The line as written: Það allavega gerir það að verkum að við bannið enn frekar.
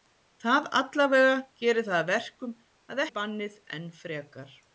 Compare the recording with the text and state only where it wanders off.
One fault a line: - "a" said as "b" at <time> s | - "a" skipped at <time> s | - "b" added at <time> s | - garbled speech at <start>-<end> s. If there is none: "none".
none